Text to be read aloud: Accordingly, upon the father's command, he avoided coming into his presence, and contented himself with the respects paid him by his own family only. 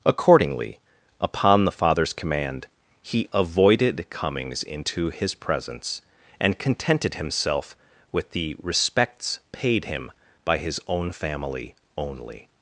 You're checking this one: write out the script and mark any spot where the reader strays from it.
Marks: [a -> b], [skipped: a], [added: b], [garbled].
Accordingly, upon the father's command, he avoided [coming -> comings] into his presence, and contented himself with the respects paid him by his own family only.